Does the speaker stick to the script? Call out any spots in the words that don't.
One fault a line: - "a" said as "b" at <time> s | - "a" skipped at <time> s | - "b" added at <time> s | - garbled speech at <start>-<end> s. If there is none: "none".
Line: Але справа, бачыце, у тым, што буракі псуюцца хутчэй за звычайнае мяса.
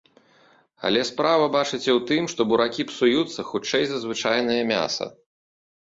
none